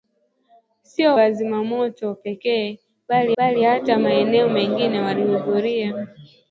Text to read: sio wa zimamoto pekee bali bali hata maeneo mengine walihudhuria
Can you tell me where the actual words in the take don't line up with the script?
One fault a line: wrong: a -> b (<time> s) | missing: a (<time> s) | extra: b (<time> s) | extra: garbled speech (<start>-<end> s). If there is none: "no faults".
no faults